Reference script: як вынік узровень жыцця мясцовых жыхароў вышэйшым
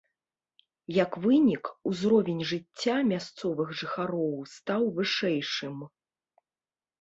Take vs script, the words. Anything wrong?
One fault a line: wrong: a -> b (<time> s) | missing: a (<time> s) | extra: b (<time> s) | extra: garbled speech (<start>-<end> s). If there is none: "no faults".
extra: стаў (4.5 s)